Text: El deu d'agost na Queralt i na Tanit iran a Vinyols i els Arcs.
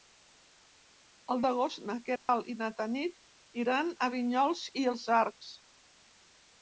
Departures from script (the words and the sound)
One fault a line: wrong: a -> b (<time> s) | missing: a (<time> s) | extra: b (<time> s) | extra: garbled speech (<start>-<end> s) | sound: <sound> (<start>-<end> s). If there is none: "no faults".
missing: deu (1.4 s)
sound: dropout (2.2-2.3 s)